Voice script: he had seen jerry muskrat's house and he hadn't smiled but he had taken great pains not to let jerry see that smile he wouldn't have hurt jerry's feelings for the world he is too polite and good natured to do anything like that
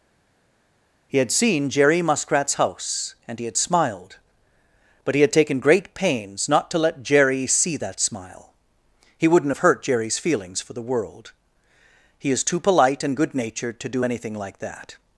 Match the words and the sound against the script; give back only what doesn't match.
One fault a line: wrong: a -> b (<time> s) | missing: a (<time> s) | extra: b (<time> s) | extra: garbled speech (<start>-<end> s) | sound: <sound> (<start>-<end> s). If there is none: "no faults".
wrong: hadn't -> had (3.5 s)